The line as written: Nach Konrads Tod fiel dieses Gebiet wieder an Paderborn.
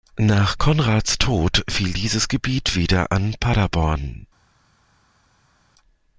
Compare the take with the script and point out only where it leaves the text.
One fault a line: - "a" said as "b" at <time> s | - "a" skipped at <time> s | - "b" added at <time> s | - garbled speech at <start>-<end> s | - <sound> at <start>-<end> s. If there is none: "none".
none